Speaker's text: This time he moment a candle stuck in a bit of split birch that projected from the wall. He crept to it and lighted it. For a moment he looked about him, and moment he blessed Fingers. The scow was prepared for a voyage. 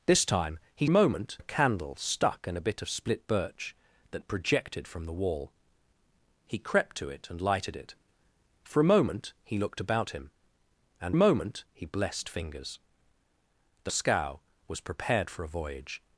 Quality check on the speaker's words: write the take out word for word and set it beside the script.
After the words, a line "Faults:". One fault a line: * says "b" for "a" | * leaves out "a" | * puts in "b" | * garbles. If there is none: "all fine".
This time he moment a candle stuck in a bit of split birch that projected from the wall. He crept to it and lighted it. For a moment he looked about him, and moment he blessed Fingers. The scow was prepared for a voyage.
Faults:
all fine